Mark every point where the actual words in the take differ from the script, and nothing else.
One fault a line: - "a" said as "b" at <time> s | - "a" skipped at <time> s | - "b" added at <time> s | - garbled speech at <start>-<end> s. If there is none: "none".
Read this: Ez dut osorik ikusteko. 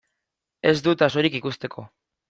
none